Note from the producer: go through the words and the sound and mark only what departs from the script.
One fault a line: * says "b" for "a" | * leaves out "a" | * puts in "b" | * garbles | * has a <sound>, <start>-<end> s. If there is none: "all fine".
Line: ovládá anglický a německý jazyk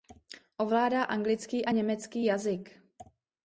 all fine